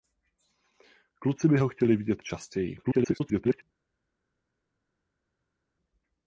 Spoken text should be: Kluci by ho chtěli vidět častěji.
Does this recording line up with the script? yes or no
no